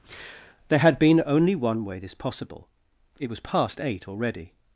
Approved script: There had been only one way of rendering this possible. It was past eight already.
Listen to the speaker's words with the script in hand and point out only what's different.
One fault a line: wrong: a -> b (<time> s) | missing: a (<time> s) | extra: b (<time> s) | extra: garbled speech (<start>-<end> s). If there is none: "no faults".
missing: of rendering (2.0 s)